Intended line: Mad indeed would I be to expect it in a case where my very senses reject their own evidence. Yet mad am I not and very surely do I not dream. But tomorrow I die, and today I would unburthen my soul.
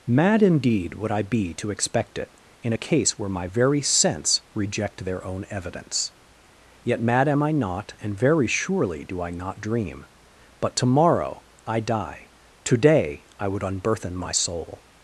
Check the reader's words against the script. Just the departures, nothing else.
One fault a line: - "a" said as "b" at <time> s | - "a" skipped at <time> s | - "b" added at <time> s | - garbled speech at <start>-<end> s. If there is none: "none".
- "senses" said as "sense" at 3.8 s
- "and" skipped at 12.3 s